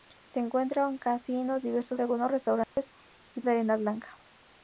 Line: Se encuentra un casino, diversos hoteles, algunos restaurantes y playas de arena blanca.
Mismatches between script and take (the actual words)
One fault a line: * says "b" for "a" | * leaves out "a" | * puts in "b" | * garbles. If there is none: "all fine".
* leaves out "hoteles"
* leaves out "playas"